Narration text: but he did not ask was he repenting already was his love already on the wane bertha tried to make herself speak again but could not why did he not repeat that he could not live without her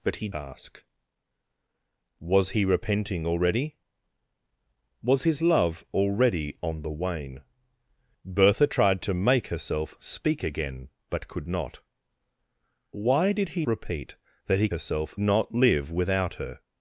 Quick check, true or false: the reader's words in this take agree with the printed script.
false